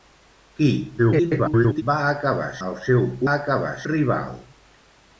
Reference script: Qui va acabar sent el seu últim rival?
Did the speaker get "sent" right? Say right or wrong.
wrong